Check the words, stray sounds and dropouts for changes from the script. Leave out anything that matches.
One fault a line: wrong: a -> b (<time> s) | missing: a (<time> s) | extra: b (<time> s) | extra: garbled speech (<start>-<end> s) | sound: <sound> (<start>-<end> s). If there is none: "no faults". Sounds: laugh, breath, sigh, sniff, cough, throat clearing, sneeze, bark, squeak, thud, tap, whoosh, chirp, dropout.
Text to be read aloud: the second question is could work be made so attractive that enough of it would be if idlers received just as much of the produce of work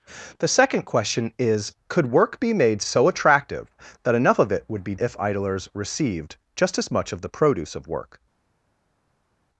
no faults